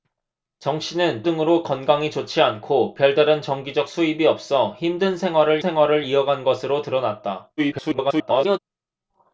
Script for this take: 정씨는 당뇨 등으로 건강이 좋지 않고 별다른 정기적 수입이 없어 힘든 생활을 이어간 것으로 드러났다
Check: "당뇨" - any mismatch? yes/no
yes